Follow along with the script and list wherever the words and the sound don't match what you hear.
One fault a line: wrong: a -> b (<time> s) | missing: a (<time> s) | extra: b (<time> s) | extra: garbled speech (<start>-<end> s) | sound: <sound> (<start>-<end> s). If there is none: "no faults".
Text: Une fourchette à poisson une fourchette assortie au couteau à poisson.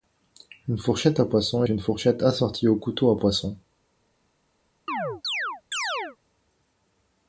sound: chirp (4.9-6.2 s)